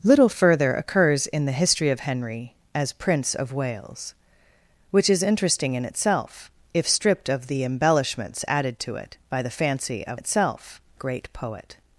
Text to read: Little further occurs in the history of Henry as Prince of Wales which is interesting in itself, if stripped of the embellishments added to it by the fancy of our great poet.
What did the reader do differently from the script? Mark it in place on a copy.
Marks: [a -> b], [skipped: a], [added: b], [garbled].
Little further occurs in the history of Henry as Prince of Wales which is interesting in itself, if stripped of the embellishments added to it by the fancy of [our -> itself] great poet.